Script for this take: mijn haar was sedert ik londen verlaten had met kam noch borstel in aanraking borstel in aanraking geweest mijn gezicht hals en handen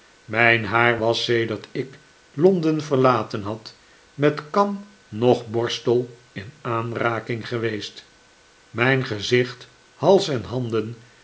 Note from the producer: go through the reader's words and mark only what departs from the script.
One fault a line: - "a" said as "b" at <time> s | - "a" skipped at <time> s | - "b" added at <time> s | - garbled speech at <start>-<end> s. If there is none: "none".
- "borstel in aanraking" skipped at 7.5 s